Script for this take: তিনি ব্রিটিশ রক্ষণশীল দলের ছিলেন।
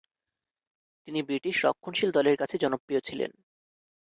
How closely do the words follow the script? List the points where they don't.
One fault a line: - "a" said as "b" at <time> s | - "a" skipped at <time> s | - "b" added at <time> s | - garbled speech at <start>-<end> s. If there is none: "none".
- "কাছে জনপ্রিয়" added at 2.3 s